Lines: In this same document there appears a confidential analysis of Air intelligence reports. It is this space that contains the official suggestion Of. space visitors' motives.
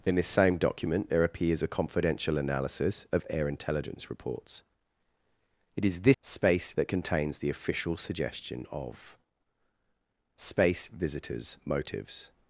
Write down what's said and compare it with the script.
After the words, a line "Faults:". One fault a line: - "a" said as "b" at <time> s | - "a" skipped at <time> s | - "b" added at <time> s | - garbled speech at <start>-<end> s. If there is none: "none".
In this same document there appears a confidential analysis of Air intelligence reports. It is this space that contains the official suggestion Of. space visitors' motives.
Faults:
none